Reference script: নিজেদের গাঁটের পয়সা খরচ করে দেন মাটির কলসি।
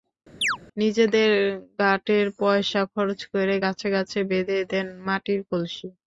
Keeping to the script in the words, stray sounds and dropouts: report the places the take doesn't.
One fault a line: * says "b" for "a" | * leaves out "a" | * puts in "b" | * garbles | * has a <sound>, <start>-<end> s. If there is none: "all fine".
* has a chirp, 0.4-0.6 s
* puts in "গাছে গাছে বেঁধে"